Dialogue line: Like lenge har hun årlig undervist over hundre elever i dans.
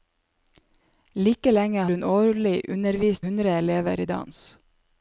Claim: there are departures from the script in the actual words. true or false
true